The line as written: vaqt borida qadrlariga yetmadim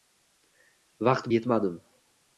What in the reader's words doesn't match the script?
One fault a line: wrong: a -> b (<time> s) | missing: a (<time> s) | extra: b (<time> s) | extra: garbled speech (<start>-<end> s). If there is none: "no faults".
missing: borida qadrlariga (1.3 s)